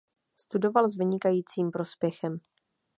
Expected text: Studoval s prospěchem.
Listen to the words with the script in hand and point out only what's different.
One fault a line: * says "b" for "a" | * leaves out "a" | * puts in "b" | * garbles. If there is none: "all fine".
* puts in "vynikajícím"